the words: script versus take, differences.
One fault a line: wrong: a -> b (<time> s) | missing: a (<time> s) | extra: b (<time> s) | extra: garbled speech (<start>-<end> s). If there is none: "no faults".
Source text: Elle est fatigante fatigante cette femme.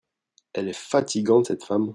missing: fatigante (1.5 s)